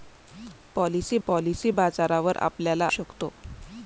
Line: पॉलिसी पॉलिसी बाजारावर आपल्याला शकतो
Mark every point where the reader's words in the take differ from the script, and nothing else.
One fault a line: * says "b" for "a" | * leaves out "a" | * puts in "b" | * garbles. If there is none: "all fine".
all fine